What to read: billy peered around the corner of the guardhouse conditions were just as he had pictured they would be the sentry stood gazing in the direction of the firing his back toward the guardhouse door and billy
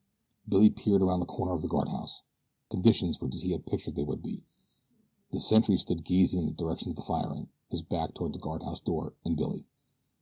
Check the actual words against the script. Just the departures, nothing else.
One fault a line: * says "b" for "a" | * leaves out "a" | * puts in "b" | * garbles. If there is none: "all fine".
* leaves out "just"